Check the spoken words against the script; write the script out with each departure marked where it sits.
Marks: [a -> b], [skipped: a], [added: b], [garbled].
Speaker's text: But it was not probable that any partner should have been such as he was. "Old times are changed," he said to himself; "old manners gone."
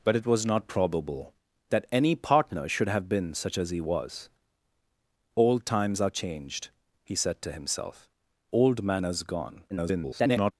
But it was not probable that any partner should have been such as he was. "Old times are changed," he said to himself; "old manners gone." [garbled]